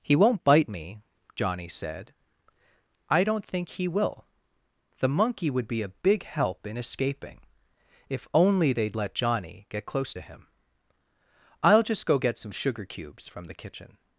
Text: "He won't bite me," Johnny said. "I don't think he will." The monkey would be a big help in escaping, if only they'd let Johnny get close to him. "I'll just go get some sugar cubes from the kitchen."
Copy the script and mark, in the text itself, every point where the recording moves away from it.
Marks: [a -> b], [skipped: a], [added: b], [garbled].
"He won't bite me," Johnny said. "I don't think he will." The monkey would be a big help in escaping, if only they'd let Johnny get close to him. "I'll just go get some sugar cubes from the kitchen."